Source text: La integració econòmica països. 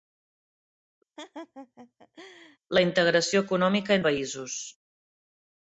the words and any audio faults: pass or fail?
fail